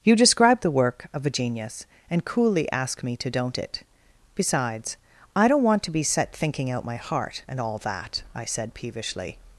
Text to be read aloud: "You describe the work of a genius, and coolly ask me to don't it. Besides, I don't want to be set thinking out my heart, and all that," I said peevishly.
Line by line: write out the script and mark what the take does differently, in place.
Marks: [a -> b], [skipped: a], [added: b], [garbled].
"You describe the work of a genius, and coolly ask me to don't it. Besides, I don't want to be set thinking out my heart, and all that," I said peevishly.